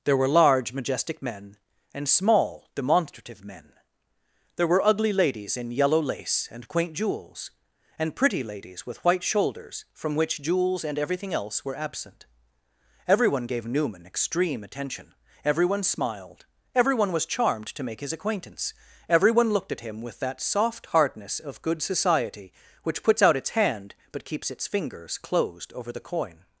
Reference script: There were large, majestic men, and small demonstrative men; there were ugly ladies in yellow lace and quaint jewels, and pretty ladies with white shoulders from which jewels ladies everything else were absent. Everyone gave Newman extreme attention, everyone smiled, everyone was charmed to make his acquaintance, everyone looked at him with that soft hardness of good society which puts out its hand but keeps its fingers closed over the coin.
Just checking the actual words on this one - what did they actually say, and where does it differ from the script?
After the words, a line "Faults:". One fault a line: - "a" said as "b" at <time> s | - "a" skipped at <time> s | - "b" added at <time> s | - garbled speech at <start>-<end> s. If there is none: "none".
There were large, majestic men, and small demonstrative men; there were ugly ladies in yellow lace and quaint jewels, and pretty ladies with white shoulders from which jewels and everything else were absent. Everyone gave Newman extreme attention, everyone smiled, everyone was charmed to make his acquaintance, everyone looked at him with that soft hardness of good society which puts out its hand but keeps its fingers closed over the coin.
Faults:
- "ladies" said as "and" at 10.8 s